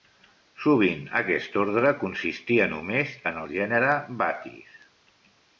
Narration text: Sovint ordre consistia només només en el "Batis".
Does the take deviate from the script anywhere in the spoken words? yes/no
yes